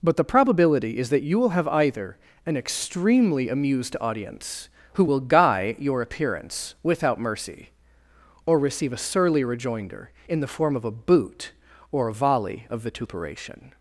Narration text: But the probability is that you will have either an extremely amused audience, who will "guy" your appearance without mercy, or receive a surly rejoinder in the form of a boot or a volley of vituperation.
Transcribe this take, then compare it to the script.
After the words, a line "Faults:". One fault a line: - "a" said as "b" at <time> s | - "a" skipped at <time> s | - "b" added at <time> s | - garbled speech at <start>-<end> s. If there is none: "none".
But the probability is that you will have either an extremely amused audience, who will "guy" your appearance without mercy, or receive a surly rejoinder in the form of a boot or a volley of vituperation.
Faults:
none